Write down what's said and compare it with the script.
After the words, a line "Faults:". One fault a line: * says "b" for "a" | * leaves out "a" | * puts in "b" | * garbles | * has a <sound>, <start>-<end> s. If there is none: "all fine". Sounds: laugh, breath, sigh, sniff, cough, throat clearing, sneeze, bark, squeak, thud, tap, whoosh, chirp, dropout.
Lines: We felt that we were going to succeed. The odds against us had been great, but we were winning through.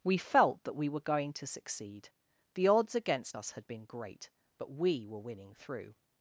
We felt that we were going to succeed. The odds against us had been great, but we were winning through.
Faults:
all fine